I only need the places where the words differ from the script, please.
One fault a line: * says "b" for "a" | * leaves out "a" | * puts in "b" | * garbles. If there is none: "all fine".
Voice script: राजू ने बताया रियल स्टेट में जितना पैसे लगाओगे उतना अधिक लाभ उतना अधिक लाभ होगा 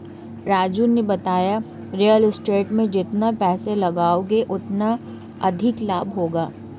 * leaves out "उतना अधिक लाभ"